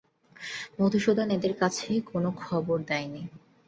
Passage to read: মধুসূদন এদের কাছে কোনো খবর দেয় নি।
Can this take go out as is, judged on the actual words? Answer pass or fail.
pass